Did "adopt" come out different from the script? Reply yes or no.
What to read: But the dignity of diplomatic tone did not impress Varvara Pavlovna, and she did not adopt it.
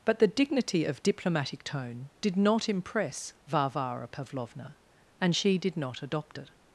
no